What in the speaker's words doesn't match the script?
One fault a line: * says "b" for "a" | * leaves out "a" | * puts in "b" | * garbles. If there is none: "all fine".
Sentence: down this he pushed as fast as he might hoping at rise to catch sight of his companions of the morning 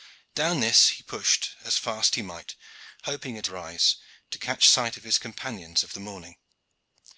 all fine